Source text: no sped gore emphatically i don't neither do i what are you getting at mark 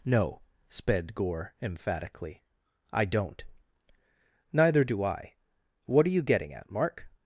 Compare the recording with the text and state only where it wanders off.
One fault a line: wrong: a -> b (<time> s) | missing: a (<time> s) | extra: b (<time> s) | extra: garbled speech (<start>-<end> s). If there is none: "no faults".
no faults